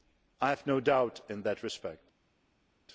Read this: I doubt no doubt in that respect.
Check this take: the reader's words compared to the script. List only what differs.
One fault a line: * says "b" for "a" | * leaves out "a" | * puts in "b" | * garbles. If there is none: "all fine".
* says "have" for "doubt"